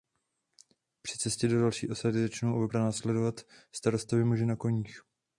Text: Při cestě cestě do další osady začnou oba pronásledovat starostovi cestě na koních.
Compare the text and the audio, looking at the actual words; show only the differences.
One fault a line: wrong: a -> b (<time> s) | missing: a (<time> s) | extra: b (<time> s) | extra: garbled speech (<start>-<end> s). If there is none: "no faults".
missing: cestě (1.5 s)
wrong: cestě -> muži (4.2 s)